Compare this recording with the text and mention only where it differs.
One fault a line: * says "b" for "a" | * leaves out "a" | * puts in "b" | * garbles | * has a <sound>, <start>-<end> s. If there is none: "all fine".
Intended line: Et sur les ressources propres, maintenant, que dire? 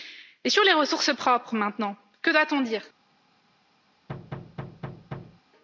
* puts in "doit on"
* has a thud, 4.1-5.4 s